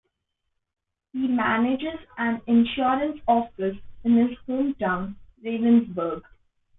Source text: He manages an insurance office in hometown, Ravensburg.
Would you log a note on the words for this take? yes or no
yes